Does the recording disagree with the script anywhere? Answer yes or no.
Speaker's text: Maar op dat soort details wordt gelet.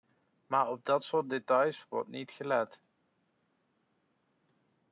yes